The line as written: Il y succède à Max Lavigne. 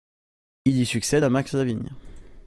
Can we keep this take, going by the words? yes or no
yes